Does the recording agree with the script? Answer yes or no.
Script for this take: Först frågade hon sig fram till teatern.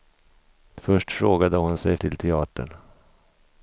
no